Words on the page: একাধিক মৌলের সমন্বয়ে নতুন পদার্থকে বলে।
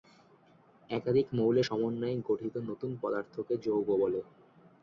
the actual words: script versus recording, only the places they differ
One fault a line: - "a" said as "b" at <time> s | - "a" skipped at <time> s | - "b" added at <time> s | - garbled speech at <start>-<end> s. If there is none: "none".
- "গঠিত" added at 2.3 s
- "যৌগ" added at 3.6 s